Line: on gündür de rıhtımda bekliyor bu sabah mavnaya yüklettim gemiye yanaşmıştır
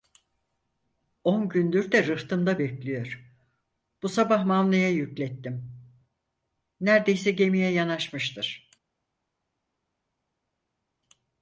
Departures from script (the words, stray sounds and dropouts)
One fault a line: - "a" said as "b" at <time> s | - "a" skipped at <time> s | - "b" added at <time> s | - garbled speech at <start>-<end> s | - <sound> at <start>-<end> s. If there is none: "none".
- "nerdeyse" added at 6.8 s